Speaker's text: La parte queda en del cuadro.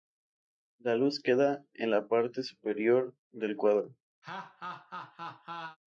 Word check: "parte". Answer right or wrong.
wrong